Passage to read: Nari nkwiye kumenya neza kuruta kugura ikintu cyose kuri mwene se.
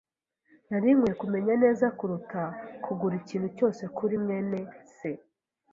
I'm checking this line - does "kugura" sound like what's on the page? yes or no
yes